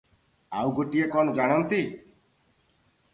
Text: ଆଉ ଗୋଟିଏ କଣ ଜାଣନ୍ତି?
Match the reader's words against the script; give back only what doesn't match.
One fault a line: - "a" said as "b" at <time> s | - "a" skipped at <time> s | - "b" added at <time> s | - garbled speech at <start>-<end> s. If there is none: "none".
none